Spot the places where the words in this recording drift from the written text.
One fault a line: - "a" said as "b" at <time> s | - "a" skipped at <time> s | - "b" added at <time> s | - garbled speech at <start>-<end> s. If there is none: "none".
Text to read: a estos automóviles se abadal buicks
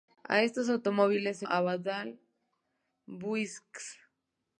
none